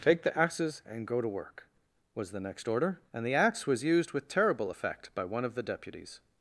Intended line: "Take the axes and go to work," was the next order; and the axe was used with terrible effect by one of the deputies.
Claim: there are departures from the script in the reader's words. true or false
false